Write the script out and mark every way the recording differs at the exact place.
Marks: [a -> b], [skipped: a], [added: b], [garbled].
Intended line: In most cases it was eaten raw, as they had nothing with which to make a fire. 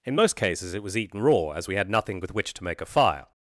In most cases it was eaten raw, as [they -> we] had nothing with which to make a fire.